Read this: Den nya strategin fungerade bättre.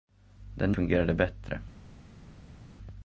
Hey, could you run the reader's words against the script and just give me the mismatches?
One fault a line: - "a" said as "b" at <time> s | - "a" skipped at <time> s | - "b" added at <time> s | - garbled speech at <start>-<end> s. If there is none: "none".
- "nya strategin" skipped at 0.7 s